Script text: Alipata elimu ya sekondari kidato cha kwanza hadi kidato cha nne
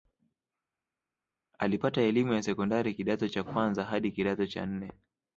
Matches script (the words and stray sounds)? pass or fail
pass